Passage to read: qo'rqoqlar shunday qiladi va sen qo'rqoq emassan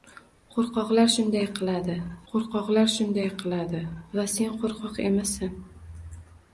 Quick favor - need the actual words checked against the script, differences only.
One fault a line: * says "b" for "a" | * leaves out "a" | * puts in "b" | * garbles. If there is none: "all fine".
* puts in "qo'rqoqlar shunday qiladi"